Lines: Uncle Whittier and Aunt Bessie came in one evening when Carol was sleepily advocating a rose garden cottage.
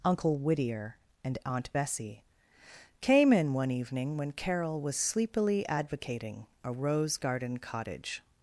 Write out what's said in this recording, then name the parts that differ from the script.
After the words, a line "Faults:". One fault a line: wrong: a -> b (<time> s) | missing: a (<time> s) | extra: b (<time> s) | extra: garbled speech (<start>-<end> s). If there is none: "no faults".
Uncle Whittier and Aunt Bessie came in one evening when Carol was sleepily advocating a rose garden cottage.
Faults:
no faults